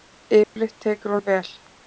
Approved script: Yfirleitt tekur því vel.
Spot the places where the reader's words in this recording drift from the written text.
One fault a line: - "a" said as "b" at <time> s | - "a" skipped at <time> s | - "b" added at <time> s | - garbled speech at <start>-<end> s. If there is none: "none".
none